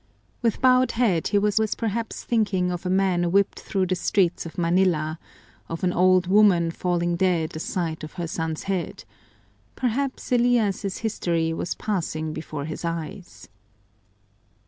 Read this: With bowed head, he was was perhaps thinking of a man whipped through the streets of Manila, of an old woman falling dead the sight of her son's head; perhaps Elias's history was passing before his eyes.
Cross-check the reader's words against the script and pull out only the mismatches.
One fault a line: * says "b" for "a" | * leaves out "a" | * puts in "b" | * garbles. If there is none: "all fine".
all fine